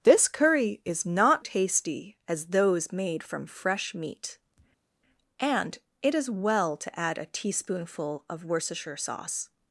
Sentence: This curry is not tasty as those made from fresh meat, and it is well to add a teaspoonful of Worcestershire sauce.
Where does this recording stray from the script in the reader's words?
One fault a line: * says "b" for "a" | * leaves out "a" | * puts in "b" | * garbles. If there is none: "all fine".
all fine